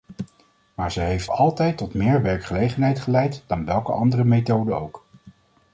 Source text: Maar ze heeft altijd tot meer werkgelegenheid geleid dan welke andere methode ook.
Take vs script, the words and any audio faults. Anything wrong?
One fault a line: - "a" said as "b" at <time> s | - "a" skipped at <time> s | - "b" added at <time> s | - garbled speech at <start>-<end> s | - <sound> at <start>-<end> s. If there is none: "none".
none